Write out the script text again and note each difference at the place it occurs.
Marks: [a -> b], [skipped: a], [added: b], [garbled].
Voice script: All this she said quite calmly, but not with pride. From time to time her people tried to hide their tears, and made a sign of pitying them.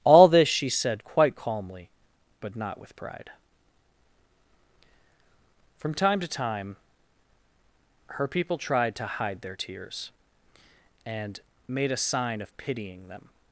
All this she said quite calmly, but not with pride. From time to time her people tried to hide their tears, and made a sign of pitying them.